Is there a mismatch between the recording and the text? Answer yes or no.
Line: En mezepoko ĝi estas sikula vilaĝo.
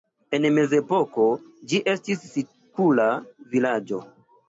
yes